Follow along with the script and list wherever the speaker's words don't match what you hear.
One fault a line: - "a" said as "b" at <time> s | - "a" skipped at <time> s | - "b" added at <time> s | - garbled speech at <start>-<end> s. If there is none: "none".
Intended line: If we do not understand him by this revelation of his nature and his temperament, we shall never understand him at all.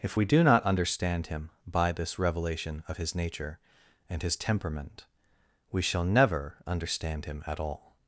none